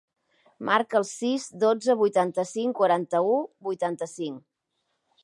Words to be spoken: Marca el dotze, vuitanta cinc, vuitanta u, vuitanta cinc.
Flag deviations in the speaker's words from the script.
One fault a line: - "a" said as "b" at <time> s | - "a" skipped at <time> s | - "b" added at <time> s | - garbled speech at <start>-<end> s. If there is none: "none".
- "sis" added at 1.1 s
- "vuitanta" said as "quaranta" at 2.8 s